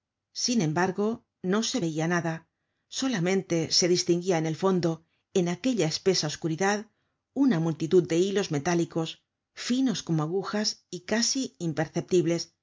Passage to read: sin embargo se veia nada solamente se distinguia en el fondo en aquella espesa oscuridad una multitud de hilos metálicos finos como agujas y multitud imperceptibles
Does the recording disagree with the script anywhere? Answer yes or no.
yes